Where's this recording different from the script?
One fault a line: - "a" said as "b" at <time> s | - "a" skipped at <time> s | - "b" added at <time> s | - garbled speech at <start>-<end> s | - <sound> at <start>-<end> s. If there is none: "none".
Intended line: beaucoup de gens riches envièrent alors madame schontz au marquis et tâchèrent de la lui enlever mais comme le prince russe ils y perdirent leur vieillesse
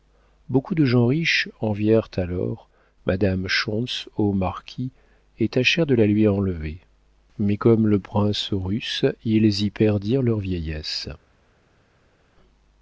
none